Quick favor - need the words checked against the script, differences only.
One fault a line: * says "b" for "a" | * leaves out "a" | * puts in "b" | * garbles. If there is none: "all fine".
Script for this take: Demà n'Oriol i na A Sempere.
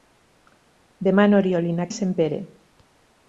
all fine